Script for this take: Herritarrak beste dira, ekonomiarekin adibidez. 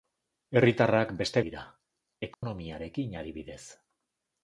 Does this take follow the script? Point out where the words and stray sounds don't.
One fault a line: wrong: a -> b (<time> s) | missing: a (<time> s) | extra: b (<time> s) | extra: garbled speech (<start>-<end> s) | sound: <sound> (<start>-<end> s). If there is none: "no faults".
sound: dropout (2.3-2.4 s)